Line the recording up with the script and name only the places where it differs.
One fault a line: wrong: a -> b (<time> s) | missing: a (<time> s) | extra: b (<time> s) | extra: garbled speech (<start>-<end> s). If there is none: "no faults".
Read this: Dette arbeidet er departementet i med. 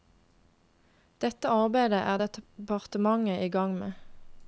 extra: gang (3.5 s)